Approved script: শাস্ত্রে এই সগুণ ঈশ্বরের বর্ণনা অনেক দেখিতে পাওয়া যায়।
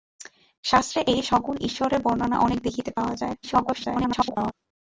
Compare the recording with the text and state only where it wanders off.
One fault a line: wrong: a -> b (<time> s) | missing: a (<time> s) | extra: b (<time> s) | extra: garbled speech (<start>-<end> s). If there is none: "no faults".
extra: garbled speech (3.4-4.5 s)